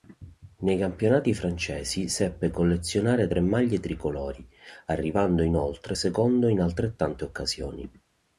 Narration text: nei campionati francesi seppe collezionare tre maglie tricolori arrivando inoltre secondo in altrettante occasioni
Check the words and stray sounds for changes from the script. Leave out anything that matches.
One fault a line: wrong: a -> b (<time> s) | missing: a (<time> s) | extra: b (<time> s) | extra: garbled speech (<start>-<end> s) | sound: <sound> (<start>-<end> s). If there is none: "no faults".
no faults